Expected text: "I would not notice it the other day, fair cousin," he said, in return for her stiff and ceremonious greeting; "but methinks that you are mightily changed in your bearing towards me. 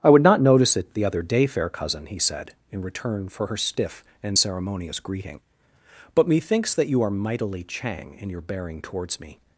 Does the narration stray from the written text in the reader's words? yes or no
yes